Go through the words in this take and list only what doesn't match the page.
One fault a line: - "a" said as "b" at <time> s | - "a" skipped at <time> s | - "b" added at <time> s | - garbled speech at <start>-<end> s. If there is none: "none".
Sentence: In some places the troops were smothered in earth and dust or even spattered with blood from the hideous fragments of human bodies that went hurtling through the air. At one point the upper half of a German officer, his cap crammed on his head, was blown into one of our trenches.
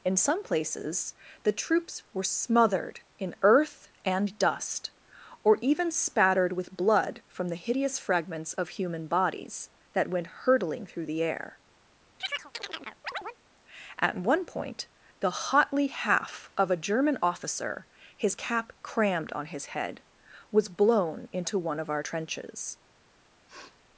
- "upper" said as "hotly" at 15.3 s